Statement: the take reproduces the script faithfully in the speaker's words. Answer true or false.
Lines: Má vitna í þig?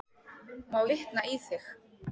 true